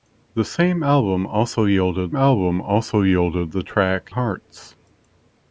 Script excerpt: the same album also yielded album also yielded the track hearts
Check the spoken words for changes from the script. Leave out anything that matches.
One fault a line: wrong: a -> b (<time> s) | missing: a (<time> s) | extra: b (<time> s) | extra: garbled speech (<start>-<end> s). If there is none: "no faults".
no faults